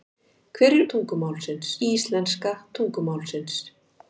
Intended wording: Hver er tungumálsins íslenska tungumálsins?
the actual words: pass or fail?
pass